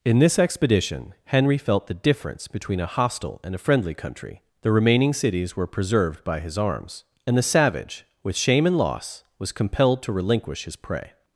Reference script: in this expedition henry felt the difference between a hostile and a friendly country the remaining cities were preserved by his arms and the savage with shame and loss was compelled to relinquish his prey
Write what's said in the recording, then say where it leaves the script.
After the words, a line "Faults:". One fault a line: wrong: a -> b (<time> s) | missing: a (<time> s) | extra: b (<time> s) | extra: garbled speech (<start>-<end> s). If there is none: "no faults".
in this expedition henry felt the difference between a hostile and a friendly country the remaining cities were preserved by his arms and the savage with shame and loss was compelled to relinquish his prey
Faults:
no faults